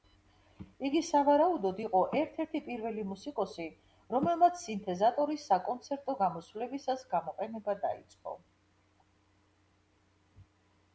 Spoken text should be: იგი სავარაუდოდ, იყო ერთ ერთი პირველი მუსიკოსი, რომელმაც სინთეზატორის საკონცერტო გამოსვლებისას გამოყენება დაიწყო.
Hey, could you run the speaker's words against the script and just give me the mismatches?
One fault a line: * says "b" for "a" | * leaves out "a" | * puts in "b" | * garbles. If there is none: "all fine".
all fine